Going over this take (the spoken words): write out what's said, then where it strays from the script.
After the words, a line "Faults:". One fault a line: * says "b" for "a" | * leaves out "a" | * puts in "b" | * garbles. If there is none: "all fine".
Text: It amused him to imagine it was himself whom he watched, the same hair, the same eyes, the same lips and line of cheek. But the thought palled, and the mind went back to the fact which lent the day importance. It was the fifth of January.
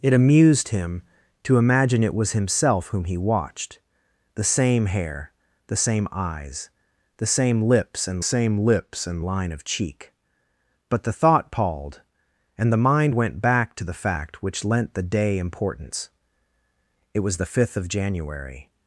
It amused him to imagine it was himself whom he watched, the same hair, the same eyes, the same lips and same lips and line of cheek. But the thought palled, and the mind went back to the fact which lent the day importance. It was the fifth of January.
Faults:
* puts in "same lips and"